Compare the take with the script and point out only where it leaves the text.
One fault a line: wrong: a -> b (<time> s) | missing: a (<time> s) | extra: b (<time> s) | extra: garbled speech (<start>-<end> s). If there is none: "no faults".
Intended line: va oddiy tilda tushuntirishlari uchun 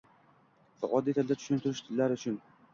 no faults